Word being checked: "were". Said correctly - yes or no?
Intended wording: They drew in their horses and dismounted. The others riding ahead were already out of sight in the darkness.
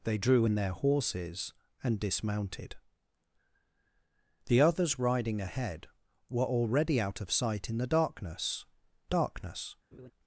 yes